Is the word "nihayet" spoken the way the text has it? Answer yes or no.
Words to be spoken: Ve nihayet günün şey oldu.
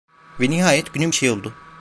yes